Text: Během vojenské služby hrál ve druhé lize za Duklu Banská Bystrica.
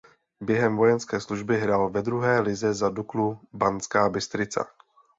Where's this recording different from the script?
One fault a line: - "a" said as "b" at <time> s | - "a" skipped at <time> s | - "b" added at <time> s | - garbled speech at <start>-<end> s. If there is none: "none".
none